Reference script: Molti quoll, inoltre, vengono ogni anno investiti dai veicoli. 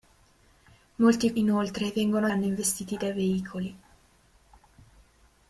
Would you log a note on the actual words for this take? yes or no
yes